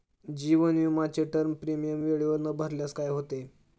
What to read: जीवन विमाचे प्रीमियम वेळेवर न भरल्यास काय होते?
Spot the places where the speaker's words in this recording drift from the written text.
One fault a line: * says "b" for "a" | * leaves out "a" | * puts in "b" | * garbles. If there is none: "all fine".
* puts in "टर्म"